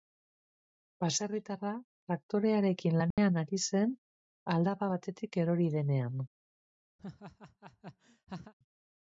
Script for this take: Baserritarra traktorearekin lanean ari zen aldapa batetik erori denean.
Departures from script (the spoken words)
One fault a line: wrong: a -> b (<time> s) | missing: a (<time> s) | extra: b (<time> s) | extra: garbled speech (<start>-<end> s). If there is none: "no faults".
no faults